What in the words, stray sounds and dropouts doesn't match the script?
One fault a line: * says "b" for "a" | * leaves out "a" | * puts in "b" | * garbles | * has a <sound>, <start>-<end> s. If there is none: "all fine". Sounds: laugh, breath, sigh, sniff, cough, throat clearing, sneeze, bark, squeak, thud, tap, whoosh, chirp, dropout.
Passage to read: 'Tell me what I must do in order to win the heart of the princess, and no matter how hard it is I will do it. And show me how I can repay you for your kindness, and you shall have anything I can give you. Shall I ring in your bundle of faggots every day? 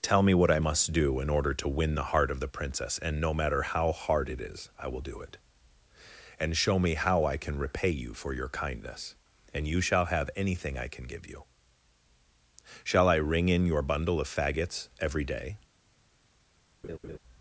* has a laugh, 16.8-17.2 s